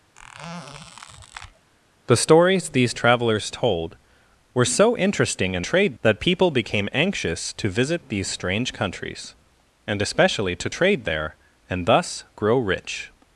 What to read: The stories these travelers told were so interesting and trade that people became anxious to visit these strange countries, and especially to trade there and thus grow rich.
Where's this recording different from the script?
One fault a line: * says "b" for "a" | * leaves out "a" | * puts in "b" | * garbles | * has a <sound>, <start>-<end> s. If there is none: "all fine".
* has a squeak, 0.1-1.7 s